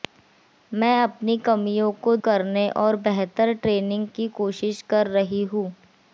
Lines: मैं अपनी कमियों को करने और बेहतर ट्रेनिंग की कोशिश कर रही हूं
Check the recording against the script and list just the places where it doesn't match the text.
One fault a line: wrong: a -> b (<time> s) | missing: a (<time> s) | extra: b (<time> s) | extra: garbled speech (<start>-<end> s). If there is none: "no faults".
no faults